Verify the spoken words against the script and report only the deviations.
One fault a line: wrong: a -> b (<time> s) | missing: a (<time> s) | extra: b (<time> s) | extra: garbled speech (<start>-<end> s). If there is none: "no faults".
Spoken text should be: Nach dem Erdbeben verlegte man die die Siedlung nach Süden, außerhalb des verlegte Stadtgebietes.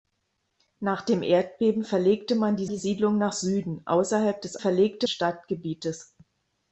no faults